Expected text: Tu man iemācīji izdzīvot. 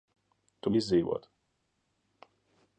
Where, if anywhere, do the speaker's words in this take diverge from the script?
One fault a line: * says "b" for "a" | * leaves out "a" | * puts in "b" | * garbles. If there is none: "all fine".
* leaves out "man iemācīji"